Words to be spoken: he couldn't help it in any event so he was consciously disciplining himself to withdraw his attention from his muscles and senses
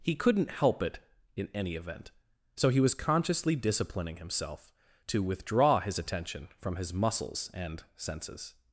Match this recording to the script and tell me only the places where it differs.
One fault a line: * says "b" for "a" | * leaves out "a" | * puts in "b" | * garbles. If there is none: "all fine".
all fine